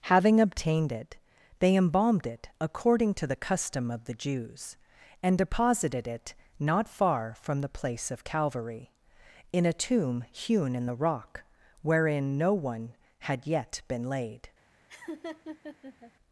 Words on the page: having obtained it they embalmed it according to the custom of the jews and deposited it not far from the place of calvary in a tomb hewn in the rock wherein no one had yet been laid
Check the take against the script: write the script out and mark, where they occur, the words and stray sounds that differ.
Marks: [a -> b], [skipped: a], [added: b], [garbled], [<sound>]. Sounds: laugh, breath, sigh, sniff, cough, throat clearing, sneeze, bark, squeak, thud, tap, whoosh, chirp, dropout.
having obtained it they embalmed it according to the custom of the jews and deposited it not far from the place of calvary in a tomb hewn in the rock wherein no one had yet been laid [laugh]